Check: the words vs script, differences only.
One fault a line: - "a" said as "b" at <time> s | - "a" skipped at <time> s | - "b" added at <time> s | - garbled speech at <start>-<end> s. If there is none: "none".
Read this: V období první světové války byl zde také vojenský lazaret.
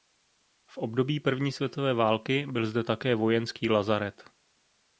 none